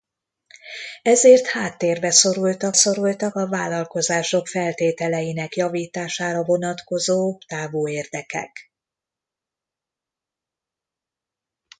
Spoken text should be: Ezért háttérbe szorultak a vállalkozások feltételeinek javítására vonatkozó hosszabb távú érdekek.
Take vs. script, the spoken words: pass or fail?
fail